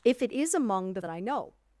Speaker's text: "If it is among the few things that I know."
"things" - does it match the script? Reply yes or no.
no